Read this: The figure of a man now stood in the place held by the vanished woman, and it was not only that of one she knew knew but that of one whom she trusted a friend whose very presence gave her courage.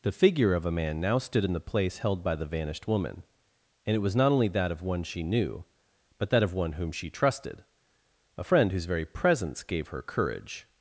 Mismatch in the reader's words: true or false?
true